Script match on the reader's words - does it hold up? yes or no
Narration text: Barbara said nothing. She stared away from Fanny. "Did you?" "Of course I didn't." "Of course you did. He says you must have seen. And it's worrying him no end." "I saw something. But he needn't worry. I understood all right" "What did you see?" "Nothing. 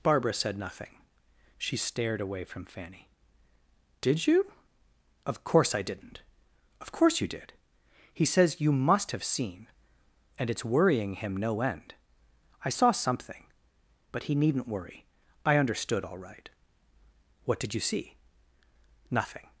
yes